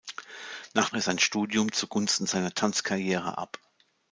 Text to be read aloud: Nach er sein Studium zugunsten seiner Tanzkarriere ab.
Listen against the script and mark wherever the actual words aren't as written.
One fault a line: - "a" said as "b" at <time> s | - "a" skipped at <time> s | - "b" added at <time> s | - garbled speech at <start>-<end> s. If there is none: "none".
none